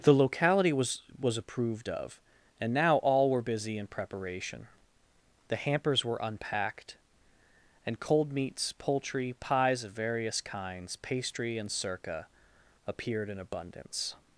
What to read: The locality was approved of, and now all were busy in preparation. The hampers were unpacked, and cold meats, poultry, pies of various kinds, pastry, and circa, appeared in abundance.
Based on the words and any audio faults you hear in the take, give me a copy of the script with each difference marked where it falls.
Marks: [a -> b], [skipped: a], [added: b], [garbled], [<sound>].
The locality was [added: was] approved of, and now all were busy in preparation. The hampers were unpacked, and cold meats, poultry, pies of various kinds, pastry, and circa, appeared in abundance.